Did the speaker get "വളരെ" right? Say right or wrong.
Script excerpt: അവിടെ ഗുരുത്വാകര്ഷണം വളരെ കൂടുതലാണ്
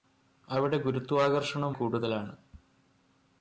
wrong